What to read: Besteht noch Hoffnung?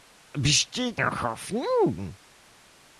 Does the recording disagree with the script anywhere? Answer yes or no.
no